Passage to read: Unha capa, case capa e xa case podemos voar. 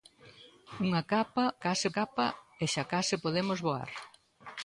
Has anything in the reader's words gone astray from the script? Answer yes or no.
no